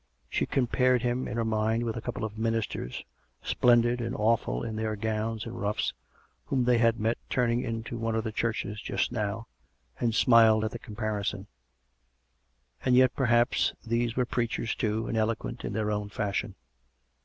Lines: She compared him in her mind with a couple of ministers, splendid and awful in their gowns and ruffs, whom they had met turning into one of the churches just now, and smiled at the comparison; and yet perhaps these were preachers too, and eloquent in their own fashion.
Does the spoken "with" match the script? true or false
true